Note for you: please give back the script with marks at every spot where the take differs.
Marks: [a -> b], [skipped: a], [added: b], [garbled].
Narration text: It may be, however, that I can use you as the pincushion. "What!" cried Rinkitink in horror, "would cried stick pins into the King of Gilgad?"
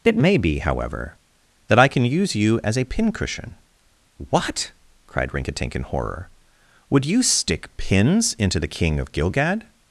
It may be, however, that I can use you as [the -> a] pincushion. "What!" cried Rinkitink in horror, "would [cried -> you] stick pins into the King of Gilgad?"